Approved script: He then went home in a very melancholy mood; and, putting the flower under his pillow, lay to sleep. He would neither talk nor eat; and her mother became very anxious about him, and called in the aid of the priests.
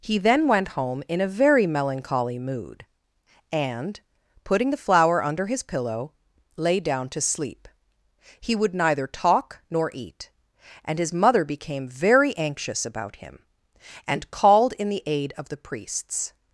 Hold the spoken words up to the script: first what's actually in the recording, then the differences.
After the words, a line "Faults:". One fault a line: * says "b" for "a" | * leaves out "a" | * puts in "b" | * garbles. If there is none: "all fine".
He then went home in a very melancholy mood; and, putting the flower under his pillow, lay down to sleep. He would neither talk nor eat; and his mother became very anxious about him, and called in the aid of the priests.
Faults:
* puts in "down"
* says "his" for "her"